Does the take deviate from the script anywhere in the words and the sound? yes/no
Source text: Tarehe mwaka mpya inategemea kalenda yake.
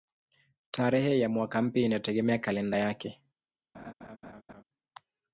yes